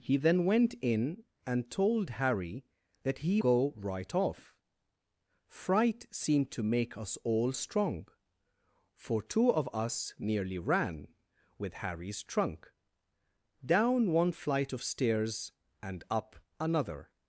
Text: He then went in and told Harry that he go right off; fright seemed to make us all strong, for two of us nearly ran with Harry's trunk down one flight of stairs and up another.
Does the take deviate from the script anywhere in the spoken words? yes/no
no